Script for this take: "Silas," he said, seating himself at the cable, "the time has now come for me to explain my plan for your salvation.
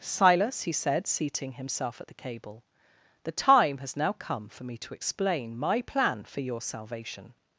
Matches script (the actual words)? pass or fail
pass